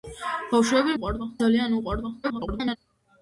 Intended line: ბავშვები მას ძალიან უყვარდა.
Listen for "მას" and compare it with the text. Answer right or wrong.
wrong